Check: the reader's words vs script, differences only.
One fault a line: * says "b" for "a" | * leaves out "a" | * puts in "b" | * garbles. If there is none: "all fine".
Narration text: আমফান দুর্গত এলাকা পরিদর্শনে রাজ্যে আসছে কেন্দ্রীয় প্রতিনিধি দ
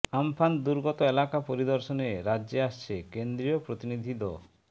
all fine